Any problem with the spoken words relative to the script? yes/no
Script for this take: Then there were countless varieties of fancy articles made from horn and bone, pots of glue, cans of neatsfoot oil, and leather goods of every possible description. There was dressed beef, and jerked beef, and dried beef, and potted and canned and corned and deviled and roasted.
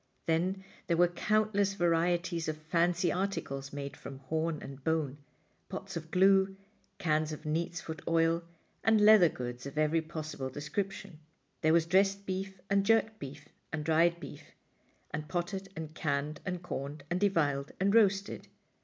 no